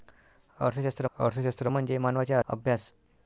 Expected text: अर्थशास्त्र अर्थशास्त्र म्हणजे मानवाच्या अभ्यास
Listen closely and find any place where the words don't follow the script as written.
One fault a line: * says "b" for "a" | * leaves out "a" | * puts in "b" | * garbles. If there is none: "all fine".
all fine